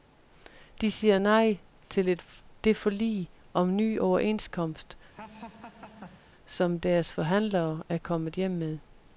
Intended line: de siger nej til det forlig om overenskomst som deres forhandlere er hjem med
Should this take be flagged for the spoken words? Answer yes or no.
yes